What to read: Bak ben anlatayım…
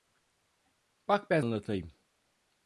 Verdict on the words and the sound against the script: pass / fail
pass